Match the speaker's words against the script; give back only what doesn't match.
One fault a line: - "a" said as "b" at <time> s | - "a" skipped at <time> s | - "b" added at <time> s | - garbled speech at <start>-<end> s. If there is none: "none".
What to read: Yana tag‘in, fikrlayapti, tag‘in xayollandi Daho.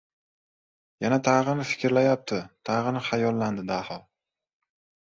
none